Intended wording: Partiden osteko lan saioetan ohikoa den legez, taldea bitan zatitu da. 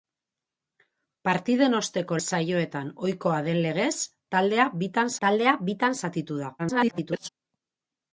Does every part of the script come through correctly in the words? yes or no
no